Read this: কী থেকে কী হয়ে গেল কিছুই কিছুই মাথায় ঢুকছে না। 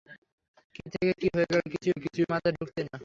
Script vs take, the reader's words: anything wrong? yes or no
no